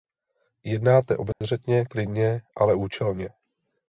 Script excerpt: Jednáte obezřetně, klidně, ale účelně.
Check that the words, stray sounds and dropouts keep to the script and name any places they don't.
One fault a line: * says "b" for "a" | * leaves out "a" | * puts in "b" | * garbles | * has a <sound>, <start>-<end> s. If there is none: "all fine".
* has a dropout, 1.3-1.4 s